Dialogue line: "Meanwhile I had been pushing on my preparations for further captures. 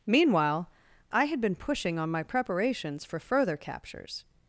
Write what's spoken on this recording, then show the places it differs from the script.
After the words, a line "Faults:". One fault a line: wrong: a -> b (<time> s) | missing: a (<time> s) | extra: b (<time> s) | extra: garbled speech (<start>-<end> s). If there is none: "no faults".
"Meanwhile I had been pushing on my preparations for further captures.
Faults:
no faults